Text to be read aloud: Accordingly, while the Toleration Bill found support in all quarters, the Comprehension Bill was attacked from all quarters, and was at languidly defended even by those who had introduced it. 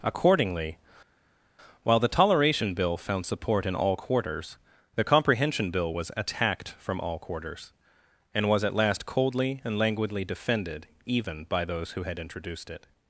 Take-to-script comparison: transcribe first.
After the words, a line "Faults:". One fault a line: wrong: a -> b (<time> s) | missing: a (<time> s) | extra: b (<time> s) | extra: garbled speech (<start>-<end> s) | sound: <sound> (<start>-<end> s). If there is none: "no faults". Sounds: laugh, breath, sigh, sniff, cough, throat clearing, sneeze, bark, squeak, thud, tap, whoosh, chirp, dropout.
Accordingly, while the Toleration Bill found support in all quarters, the Comprehension Bill was attacked from all quarters, and was at last coldly and languidly defended even by those who had introduced it.
Faults:
extra: last coldly and (8.7 s)